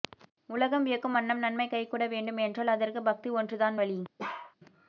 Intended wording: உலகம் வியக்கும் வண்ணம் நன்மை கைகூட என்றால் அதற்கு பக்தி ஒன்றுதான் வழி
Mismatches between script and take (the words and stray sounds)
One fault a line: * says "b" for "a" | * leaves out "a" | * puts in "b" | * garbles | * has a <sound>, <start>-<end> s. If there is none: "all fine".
* puts in "வேண்டும்"
* has a bark, 4.2-4.6 s